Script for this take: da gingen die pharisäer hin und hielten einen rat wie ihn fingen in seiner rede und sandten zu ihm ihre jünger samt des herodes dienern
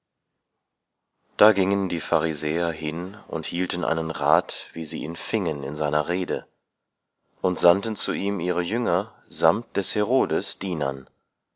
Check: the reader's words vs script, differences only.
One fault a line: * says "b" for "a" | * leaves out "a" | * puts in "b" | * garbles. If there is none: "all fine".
* puts in "sie"